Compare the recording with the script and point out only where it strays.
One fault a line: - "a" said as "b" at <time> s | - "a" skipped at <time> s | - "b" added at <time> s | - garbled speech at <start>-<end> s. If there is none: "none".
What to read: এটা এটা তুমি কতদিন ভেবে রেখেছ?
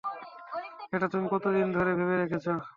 - "এটা" skipped at 1.1 s
- "ধরে" added at 1.8 s